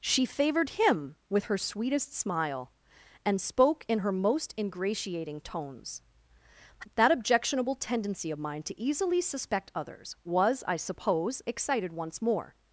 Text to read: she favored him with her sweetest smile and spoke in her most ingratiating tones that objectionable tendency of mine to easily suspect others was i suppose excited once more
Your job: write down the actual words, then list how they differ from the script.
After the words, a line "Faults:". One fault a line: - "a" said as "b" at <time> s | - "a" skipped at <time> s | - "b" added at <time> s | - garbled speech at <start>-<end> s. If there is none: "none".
she favored him with her sweetest smile and spoke in her most ingratiating tones that objectionable tendency of mine to easily suspect others was i suppose excited once more
Faults:
none